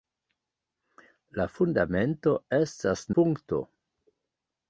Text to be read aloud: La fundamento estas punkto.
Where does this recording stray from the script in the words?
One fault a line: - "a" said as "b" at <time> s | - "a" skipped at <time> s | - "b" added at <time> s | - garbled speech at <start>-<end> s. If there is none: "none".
none